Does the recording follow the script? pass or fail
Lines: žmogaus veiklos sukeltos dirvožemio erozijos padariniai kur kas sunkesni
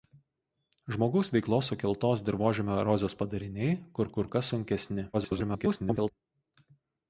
fail